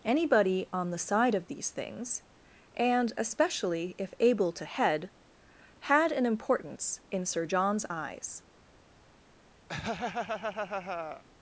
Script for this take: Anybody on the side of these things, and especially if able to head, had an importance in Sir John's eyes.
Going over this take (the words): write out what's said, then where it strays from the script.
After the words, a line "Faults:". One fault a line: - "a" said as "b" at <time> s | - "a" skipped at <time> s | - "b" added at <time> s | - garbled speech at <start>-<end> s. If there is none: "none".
Anybody on the side of these things, and especially if able to head, had an importance in Sir John's eyes.
Faults:
none